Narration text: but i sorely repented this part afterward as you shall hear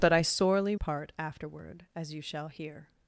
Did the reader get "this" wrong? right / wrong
wrong